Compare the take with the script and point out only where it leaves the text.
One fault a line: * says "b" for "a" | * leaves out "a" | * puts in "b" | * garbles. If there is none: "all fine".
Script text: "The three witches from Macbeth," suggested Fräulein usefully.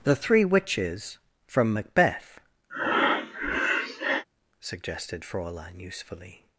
all fine